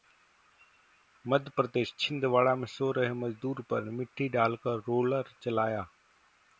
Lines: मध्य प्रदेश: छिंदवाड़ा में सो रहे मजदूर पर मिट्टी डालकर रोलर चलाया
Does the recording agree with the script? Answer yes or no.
yes